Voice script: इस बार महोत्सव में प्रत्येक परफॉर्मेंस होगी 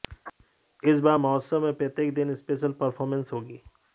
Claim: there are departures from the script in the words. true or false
true